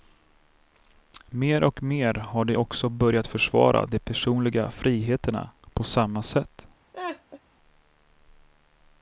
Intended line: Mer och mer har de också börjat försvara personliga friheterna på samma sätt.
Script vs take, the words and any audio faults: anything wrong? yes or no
yes